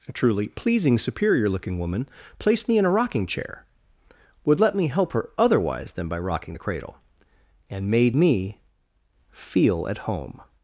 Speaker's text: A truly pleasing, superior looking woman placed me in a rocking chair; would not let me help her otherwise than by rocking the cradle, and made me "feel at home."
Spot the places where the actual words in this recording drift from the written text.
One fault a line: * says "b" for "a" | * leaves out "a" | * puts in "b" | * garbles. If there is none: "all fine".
* leaves out "not"